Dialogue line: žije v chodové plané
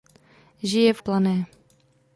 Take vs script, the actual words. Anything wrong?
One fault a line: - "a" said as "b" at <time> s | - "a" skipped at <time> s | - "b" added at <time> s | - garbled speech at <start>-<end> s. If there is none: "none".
- "chodové" skipped at 1.0 s